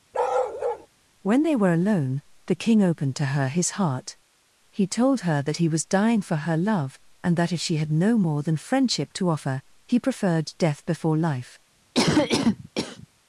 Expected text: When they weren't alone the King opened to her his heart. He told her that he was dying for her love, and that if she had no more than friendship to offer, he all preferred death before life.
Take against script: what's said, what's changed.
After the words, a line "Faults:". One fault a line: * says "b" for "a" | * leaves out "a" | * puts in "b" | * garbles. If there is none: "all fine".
When they were alone the King opened to her his heart. He told her that he was dying for her love, and that if she had no more than friendship to offer, he preferred death before life.
Faults:
* says "were" for "weren't"
* leaves out "all"